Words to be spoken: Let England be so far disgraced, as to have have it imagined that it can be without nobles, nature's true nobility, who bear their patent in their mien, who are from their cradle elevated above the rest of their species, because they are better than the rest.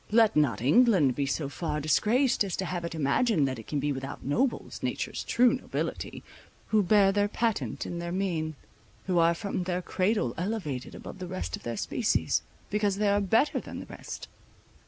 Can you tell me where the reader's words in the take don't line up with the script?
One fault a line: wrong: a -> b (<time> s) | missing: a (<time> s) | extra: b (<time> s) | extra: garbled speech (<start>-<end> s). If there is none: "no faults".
extra: not (0.3 s)
missing: have (2.8 s)